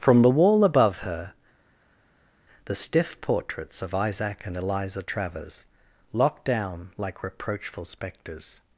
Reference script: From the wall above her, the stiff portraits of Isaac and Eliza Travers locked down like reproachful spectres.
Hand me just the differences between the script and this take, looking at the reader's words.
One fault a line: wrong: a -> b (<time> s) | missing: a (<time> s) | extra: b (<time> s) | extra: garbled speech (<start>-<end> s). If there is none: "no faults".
no faults